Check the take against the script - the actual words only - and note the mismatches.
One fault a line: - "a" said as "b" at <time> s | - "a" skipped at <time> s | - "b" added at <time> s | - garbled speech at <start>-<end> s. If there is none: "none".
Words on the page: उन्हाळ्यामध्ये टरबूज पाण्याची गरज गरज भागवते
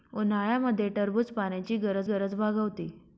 none